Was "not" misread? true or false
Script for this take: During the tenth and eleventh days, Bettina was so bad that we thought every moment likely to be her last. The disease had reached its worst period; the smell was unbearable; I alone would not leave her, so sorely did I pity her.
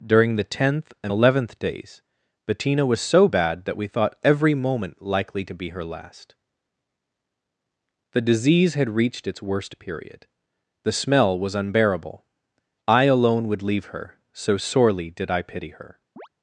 true